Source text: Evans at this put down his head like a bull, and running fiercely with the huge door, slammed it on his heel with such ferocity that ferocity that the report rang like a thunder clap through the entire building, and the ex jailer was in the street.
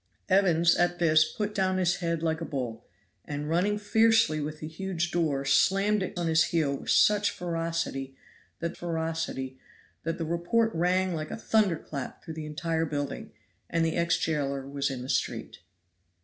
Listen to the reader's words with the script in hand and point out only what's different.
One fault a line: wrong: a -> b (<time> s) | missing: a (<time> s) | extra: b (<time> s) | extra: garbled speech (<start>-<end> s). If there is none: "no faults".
no faults